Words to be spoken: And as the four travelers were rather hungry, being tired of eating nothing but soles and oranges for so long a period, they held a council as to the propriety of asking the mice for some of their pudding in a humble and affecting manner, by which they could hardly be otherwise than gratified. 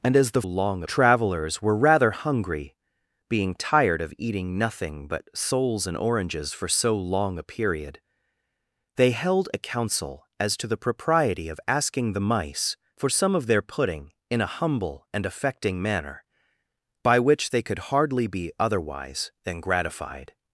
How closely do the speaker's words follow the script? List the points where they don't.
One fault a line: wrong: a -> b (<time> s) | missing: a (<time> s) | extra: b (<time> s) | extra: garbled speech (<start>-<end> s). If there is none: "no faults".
wrong: four -> long (0.4 s)